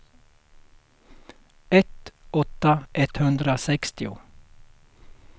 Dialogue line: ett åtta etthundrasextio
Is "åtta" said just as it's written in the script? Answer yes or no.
yes